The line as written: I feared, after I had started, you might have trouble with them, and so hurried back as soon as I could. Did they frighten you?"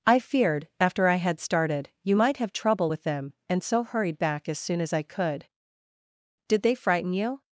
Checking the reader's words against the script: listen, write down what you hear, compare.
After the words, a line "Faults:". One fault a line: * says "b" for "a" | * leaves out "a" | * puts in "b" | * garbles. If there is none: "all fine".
I feared, after I had started, you might have trouble with them, and so hurried back as soon as I could. Did they frighten you?"
Faults:
all fine